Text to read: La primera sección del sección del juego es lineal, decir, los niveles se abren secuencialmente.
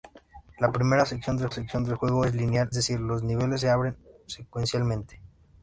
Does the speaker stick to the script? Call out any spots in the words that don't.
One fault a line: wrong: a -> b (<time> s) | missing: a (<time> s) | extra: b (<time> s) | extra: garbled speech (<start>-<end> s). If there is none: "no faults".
no faults